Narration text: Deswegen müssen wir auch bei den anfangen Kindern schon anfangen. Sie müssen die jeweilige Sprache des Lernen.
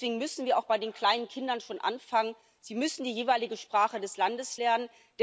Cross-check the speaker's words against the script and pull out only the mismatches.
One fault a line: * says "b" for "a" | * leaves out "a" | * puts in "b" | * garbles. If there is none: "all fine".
* says "kleinen" for "anfangen"
* puts in "Landes"